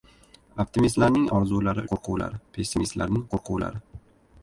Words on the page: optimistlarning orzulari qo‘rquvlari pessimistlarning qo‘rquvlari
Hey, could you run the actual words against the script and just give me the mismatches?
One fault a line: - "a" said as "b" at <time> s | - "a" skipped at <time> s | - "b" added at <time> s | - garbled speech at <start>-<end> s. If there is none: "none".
none